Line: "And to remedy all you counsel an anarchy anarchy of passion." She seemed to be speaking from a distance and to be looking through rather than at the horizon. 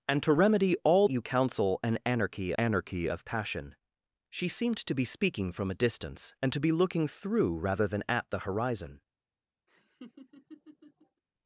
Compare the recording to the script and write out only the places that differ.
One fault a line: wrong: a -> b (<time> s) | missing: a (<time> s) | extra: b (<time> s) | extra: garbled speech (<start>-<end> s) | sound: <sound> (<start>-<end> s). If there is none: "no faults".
sound: laugh (9.7-11.2 s)